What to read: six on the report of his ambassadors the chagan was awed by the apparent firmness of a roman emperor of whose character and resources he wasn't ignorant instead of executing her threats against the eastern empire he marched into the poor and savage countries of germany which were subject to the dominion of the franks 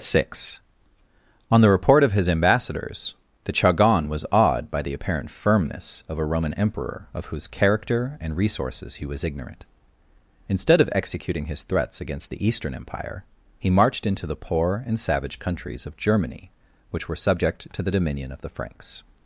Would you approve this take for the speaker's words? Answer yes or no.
no